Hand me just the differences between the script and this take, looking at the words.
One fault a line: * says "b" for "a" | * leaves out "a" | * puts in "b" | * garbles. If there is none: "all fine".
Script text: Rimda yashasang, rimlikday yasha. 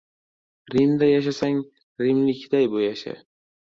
all fine